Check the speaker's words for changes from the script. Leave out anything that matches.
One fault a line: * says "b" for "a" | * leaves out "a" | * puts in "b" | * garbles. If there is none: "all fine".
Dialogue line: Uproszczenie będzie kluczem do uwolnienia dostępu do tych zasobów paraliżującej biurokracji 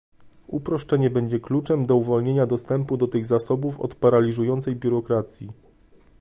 * puts in "od"